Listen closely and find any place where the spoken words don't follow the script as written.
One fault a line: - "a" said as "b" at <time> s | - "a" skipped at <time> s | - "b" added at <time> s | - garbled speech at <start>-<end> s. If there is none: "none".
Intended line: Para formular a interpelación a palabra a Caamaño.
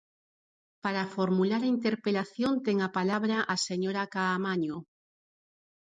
- "ten" added at 2.7 s
- "señora" added at 3.7 s